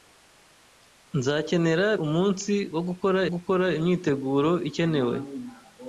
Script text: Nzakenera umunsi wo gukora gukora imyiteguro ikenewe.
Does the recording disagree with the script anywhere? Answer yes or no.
no